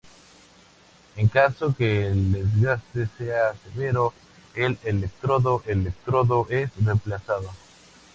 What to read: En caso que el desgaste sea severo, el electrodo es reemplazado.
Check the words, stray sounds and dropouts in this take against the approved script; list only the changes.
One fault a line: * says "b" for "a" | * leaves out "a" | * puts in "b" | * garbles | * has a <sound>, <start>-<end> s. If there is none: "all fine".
* puts in "electrodo"